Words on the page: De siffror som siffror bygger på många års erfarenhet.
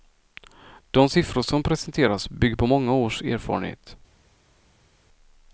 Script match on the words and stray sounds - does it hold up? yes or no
no